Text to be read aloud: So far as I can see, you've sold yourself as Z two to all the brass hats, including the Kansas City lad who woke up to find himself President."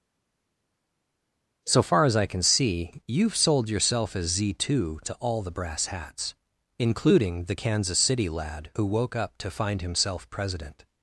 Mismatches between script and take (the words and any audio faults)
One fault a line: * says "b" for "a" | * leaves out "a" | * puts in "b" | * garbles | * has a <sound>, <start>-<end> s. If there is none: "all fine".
all fine